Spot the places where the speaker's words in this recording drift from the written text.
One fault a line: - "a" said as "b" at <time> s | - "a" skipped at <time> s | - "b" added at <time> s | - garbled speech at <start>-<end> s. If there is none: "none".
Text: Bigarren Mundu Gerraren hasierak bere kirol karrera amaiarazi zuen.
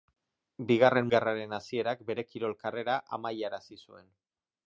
- "Mundu" skipped at 1.1 s